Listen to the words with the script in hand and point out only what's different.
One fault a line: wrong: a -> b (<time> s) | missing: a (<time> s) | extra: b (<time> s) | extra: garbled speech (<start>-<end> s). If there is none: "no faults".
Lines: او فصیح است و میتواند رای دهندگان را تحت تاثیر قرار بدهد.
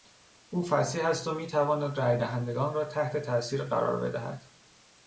no faults